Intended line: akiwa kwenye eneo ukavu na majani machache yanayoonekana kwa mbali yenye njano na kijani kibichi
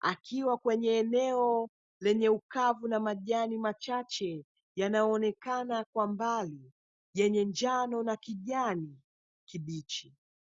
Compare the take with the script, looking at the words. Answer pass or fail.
fail